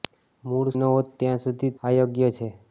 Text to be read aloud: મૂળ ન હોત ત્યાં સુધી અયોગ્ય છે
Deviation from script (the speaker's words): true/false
false